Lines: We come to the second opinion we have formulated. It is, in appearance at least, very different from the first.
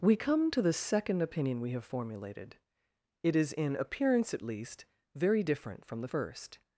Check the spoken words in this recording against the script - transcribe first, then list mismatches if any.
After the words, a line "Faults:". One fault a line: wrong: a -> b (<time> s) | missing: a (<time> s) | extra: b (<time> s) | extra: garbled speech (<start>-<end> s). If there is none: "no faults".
We come to the second opinion we have formulated. It is, in appearance at least, very different from the first.
Faults:
no faults